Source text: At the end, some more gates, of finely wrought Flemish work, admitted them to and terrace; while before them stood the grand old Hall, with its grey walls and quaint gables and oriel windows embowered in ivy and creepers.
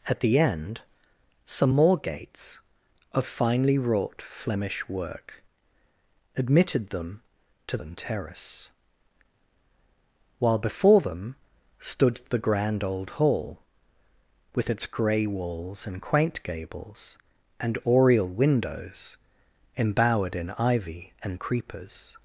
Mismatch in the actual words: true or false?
false